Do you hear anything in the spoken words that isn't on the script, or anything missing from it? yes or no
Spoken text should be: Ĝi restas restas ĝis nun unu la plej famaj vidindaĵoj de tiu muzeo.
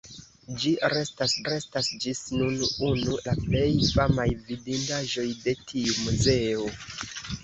no